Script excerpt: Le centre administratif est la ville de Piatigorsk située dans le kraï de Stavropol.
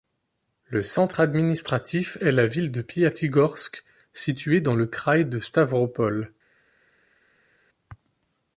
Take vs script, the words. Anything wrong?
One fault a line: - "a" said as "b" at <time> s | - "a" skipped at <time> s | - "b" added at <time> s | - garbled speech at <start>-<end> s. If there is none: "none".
none